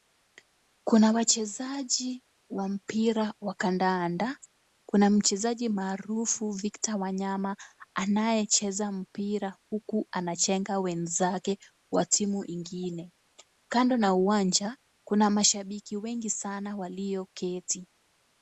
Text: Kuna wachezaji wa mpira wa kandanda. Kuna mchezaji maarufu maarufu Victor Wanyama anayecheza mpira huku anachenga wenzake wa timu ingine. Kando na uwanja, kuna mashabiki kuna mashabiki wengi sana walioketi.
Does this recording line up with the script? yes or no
no